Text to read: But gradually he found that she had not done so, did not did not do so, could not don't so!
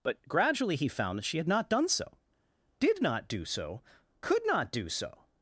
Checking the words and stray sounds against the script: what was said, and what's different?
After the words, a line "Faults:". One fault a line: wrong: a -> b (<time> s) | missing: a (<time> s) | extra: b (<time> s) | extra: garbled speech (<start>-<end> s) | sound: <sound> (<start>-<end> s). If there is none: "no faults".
But gradually he found that she had not done so, did not do so, could not do so!
Faults:
missing: did not (3.3 s)
wrong: don't -> do (4.7 s)